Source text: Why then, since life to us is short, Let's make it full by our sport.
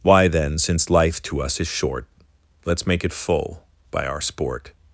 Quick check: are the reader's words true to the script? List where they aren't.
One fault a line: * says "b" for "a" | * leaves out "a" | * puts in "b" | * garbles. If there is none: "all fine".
all fine